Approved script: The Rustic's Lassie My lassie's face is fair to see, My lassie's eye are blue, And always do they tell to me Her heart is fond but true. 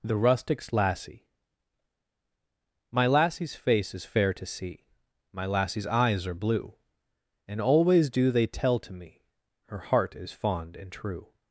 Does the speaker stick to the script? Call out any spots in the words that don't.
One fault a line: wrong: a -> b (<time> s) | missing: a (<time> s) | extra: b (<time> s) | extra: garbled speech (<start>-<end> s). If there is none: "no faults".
wrong: eye -> eyes (5.9 s)
wrong: but -> and (10.8 s)